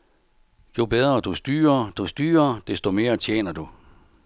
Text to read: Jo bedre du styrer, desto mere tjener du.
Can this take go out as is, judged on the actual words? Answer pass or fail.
fail